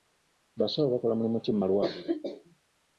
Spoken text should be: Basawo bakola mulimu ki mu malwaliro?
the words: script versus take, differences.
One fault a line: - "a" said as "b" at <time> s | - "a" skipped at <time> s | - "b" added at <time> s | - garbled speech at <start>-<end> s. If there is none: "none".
none